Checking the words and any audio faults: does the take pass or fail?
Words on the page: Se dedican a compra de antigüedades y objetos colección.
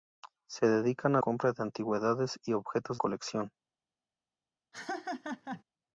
fail